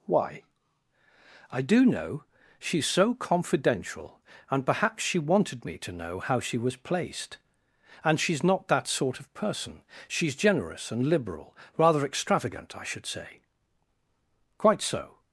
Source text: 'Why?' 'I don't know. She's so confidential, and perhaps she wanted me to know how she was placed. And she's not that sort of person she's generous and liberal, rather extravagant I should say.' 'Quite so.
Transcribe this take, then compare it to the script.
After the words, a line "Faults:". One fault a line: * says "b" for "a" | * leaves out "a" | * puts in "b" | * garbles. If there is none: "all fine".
'Why?' 'I do know. She's so confidential, and perhaps she wanted me to know how she was placed. And she's not that sort of person she's generous and liberal, rather extravagant I should say.' 'Quite so.
Faults:
* says "do" for "don't"